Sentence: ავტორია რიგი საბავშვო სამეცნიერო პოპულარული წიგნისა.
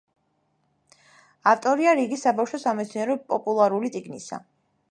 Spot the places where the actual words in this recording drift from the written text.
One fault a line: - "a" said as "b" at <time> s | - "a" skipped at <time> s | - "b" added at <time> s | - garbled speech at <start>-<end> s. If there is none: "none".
none